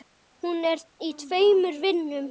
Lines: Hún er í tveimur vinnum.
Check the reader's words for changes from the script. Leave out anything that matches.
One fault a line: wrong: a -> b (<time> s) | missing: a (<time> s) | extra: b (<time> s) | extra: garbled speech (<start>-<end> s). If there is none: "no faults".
no faults